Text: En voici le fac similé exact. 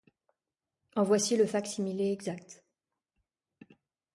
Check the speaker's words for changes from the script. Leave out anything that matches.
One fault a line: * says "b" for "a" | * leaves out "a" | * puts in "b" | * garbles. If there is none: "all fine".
all fine